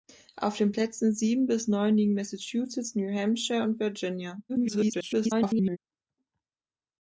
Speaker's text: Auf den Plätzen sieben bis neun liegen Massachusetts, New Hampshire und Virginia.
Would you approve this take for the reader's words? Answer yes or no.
no